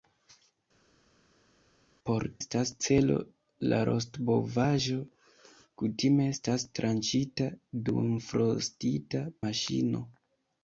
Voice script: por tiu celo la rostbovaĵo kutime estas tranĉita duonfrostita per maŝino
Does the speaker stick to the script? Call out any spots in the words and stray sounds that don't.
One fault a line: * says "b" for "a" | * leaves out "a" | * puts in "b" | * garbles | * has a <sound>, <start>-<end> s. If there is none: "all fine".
* says "estas" for "tiu"
* leaves out "per"